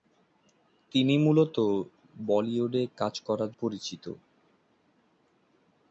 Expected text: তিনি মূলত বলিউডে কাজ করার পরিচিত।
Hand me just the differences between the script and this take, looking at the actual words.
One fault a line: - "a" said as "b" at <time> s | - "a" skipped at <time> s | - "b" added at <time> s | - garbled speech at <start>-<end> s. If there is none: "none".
none